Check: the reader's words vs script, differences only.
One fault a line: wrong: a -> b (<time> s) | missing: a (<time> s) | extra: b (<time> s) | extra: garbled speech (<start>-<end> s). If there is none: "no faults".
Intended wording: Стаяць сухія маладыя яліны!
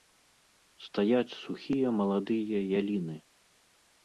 no faults